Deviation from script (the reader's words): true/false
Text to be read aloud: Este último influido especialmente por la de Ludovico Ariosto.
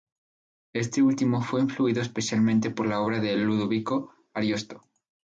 true